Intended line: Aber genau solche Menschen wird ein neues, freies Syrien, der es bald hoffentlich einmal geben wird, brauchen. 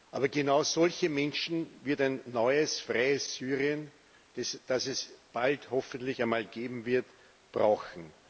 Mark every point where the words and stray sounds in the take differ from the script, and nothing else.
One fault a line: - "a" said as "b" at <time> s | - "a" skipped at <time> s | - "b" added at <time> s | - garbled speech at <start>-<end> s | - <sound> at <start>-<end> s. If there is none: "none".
- "der" said as "das" at 4.3 s